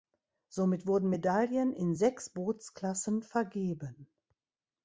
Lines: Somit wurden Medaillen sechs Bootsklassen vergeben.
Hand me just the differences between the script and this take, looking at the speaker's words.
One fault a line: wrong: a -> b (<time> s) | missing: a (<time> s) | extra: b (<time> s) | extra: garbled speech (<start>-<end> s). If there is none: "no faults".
extra: in (1.7 s)